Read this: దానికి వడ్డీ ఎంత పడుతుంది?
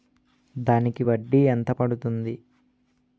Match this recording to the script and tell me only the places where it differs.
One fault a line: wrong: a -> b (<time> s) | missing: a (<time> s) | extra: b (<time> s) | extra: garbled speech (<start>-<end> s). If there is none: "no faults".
no faults